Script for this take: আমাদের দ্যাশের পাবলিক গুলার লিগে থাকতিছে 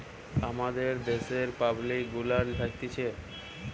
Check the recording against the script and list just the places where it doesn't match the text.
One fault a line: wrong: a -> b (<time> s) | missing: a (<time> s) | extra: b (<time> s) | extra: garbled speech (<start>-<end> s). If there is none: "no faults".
missing: লিগে (2.5 s)